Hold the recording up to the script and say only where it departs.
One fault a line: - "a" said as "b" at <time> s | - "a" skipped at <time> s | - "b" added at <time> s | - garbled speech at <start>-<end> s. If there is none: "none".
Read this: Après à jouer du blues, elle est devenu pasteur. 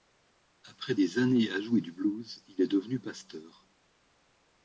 - "des années" added at 0.9 s
- "elle" said as "il" at 2.5 s